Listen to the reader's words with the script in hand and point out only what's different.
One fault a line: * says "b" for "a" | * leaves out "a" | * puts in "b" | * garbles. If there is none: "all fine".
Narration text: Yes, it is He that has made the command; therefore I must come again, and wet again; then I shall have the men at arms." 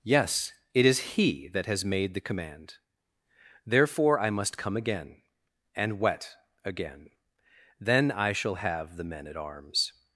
all fine